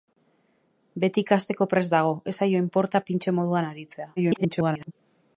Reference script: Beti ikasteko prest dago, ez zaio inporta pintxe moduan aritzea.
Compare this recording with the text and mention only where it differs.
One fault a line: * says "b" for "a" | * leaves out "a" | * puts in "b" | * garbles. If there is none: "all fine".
* garbles